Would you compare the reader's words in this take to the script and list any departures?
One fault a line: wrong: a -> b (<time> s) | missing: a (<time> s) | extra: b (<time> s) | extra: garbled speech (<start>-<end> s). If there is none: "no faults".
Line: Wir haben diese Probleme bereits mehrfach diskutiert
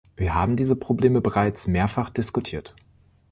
no faults